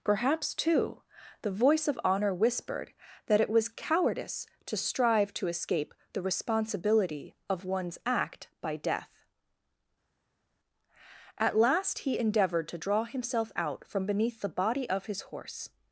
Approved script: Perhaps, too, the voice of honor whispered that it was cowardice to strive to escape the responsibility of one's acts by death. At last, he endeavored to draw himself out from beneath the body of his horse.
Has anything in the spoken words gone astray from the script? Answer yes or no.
yes